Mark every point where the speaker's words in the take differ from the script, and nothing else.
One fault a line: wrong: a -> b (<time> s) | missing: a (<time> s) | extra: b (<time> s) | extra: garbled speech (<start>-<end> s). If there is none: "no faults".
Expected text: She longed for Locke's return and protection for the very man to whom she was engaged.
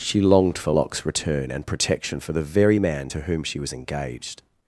no faults